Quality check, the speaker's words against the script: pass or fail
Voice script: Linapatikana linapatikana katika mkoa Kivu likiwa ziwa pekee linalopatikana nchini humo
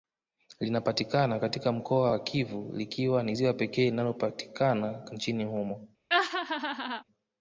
fail